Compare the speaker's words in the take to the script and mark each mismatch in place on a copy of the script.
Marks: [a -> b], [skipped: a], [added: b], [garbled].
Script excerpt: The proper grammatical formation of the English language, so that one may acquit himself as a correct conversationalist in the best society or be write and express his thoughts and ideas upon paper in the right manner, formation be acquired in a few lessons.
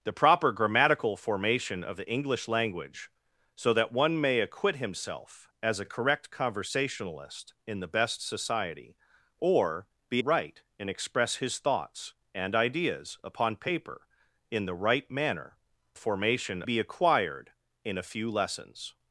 The proper grammatical formation of the English language, so that one may acquit himself as a correct conversationalist in the best society or be write and express his thoughts and ideas upon paper in the right manner, formation be acquired in a few lessons.